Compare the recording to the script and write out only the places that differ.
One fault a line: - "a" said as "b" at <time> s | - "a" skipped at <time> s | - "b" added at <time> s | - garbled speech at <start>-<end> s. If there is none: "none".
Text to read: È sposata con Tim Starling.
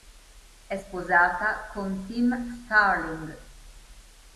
none